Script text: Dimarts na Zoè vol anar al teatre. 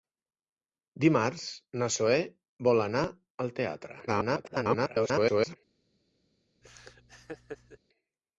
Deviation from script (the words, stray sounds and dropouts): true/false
true